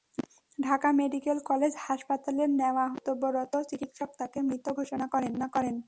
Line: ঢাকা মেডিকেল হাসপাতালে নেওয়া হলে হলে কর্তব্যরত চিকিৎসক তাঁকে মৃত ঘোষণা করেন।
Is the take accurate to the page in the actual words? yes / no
no